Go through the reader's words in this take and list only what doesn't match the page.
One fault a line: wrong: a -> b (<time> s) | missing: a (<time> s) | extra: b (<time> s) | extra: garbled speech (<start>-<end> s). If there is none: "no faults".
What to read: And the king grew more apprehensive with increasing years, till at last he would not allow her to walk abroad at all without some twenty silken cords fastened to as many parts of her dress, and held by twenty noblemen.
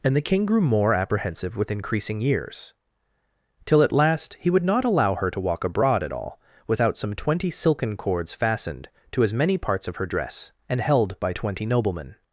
no faults